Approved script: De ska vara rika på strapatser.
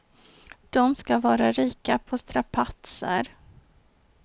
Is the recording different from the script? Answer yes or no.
no